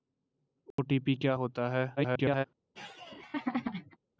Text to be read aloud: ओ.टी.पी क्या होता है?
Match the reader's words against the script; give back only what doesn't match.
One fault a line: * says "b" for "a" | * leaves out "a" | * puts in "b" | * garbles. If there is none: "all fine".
* garbles